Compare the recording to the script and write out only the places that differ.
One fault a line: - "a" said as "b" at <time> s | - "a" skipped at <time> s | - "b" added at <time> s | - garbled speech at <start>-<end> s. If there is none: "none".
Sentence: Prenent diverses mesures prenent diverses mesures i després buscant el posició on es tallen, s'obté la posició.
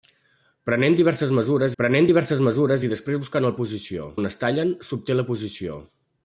none